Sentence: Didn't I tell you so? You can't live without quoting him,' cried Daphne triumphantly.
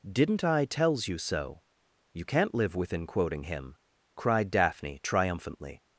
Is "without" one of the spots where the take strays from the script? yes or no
yes